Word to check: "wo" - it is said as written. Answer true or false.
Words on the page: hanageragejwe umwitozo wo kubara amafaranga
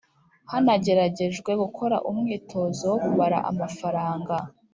true